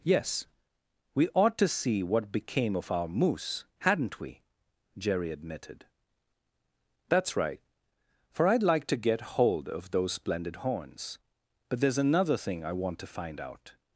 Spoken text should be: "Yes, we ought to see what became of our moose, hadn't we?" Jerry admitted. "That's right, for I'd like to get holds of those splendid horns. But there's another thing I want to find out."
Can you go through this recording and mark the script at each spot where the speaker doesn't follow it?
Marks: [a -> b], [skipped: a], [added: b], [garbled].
"Yes, we ought to see what became of our moose, hadn't we?" Jerry admitted. "That's right, for I'd like to get [holds -> hold] of those splendid horns. But there's another thing I want to find out."